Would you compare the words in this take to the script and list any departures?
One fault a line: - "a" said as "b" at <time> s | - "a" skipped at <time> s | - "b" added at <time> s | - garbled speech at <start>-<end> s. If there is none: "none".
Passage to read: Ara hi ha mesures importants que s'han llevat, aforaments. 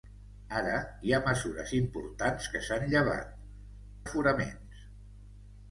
none